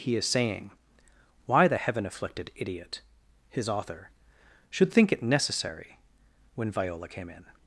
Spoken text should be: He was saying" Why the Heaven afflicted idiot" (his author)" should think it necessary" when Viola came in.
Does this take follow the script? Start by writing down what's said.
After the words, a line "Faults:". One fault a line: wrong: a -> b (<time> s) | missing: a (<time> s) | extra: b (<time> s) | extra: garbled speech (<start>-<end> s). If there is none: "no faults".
He is saying" Why the Heaven afflicted idiot" (his author)" should think it necessary" when Viola came in.
Faults:
wrong: was -> is (0.1 s)